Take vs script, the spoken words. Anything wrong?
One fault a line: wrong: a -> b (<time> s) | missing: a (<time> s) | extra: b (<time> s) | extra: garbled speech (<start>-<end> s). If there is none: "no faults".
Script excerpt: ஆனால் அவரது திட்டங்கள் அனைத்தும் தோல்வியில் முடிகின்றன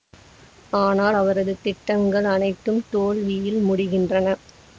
no faults